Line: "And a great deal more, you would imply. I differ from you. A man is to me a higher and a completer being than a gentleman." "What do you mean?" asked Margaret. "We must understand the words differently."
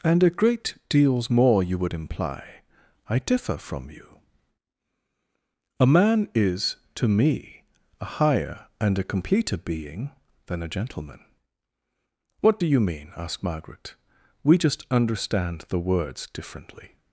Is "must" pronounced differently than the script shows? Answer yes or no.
yes